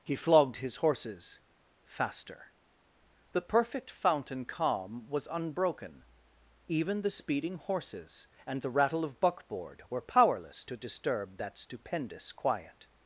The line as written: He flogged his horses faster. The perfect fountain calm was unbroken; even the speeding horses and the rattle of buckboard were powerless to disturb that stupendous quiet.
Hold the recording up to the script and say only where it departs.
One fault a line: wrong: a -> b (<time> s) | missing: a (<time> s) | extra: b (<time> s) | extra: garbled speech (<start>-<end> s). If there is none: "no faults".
no faults